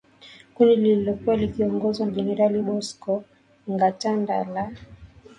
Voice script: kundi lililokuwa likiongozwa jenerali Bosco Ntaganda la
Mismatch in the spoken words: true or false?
false